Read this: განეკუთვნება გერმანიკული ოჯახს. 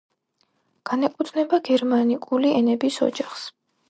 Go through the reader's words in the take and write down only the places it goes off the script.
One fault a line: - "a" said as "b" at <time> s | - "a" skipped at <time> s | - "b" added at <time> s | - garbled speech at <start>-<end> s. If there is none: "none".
- "ენების" added at 2.6 s